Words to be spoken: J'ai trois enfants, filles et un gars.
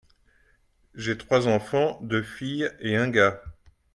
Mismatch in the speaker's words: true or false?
true